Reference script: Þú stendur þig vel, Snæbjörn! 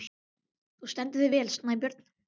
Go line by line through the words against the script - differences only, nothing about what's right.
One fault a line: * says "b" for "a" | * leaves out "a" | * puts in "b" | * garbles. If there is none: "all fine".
all fine